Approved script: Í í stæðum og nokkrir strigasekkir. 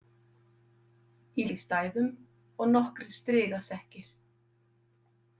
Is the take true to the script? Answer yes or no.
yes